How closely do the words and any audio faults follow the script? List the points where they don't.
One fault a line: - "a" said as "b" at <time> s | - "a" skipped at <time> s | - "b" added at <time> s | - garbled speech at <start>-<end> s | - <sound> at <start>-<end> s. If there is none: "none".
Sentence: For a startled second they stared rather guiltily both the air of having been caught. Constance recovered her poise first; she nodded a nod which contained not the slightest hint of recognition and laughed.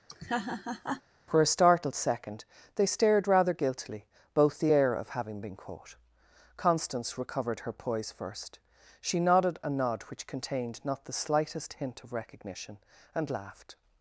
- laugh at 0.1-1.0 s